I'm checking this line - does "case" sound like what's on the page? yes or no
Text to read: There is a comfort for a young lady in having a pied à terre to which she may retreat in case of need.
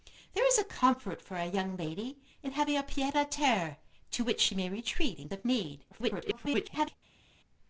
no